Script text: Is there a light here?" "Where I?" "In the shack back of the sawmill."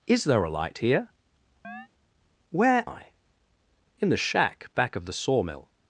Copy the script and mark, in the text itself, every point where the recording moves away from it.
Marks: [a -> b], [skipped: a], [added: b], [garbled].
Is there a light here?" "Where I?" "In the shack back of the sawmill."